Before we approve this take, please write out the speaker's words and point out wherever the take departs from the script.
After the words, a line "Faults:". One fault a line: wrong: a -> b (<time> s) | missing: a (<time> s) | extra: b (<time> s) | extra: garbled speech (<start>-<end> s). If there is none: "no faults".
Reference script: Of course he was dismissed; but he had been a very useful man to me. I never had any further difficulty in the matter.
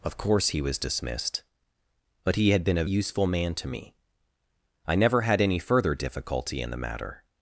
Of course he was dismissed; but he had been a useful man to me. I never had any further difficulty in the matter.
Faults:
missing: very (2.9 s)